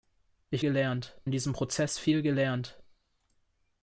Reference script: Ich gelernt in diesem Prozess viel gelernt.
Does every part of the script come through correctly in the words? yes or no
yes